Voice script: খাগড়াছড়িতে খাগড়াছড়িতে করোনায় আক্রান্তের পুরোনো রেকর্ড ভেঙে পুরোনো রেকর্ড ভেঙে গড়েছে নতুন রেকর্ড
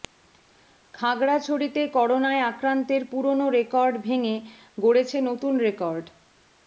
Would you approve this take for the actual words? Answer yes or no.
no